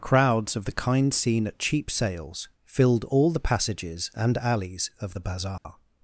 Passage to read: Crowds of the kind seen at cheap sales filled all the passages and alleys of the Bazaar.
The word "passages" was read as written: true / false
true